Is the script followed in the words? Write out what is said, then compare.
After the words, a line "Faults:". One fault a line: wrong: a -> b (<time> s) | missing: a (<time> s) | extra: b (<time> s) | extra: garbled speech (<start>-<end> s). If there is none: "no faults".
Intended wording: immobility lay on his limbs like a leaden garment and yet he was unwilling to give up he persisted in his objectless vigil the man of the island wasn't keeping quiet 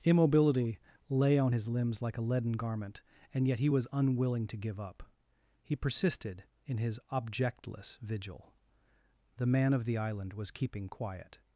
immobility lay on his limbs like a leaden garment and yet he was unwilling to give up he persisted in his objectless vigil the man of the island was keeping quiet
Faults:
wrong: wasn't -> was (10.3 s)